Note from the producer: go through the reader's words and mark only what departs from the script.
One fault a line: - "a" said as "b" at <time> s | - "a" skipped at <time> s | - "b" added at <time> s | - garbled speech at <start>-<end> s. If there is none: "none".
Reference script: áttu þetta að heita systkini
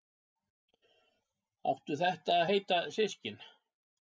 none